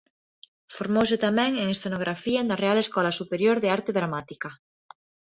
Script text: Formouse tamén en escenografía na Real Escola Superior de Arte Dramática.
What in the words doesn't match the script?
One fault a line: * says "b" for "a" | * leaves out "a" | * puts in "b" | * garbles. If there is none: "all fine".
all fine